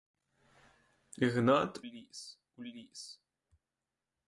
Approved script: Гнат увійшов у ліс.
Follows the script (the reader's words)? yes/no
no